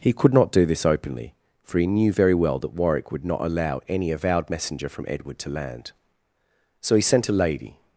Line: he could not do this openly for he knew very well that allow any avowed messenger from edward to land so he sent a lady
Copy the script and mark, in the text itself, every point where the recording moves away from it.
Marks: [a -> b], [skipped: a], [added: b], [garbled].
he could not do this openly for he knew very well that [added: warwick would not] allow any avowed messenger from edward to land so he sent a lady